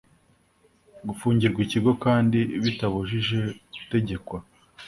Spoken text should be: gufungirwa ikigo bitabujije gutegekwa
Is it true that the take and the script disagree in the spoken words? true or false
true